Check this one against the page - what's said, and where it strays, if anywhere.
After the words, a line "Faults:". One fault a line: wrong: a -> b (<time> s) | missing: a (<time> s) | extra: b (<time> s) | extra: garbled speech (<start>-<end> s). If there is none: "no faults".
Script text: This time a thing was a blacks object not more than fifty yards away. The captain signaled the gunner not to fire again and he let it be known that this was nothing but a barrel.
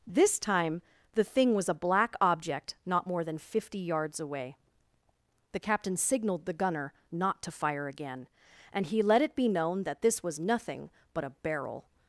This time the thing was a black object not more than fifty yards away. The captain signaled the gunner not to fire again and he let it be known that this was nothing but a barrel.
Faults:
wrong: a -> the (1.1 s)
wrong: blacks -> black (1.7 s)